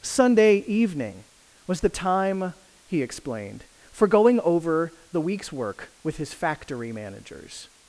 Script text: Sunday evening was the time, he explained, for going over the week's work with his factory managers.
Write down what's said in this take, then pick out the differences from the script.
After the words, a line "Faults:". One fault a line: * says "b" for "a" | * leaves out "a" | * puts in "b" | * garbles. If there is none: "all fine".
Sunday evening was the time, he explained, for going over the week's work with his factory managers.
Faults:
all fine